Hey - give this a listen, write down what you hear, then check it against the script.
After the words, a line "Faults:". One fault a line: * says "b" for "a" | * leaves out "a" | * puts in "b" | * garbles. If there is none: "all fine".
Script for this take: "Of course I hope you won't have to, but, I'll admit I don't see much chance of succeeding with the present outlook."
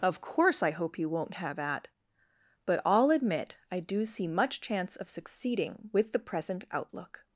"Of course I hope you won't have at, but, I'll admit I do see much chance of succeeding with the present outlook."
Faults:
* says "at" for "to"
* says "do" for "don't"